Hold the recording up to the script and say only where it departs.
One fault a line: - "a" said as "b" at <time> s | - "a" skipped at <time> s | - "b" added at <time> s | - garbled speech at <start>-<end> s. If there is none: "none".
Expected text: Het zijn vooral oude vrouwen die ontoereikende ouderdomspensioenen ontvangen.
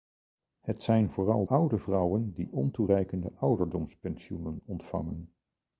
none